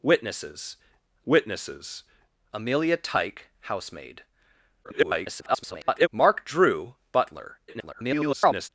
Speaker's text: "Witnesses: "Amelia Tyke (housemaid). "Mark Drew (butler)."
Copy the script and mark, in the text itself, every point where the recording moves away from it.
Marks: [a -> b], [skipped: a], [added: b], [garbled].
"Witnesses: [added: witnesses] "Amelia Tyke (housemaid). [garbled] "Mark Drew (butler)." [garbled]